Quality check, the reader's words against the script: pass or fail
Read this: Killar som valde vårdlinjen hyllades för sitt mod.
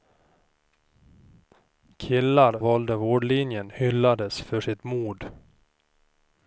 fail